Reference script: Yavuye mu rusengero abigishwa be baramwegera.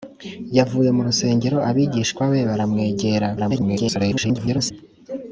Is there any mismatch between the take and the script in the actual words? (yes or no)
yes